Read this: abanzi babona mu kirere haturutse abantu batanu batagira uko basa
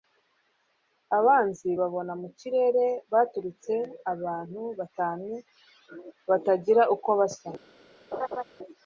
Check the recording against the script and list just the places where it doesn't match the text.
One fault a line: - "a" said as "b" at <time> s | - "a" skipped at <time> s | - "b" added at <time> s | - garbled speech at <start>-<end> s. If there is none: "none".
none